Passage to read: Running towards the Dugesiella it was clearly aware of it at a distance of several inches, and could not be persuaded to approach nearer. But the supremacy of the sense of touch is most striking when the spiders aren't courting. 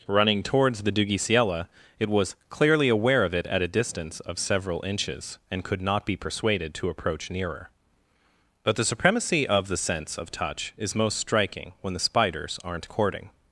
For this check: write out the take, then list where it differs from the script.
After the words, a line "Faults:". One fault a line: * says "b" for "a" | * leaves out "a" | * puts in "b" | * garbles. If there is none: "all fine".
Running towards the Dugesiella it was clearly aware of it at a distance of several inches, and could not be persuaded to approach nearer. But the supremacy of the sense of touch is most striking when the spiders aren't courting.
Faults:
all fine